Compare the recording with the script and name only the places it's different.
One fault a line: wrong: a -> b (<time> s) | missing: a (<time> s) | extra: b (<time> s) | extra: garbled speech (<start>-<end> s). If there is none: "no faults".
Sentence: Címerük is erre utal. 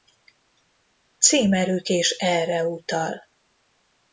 no faults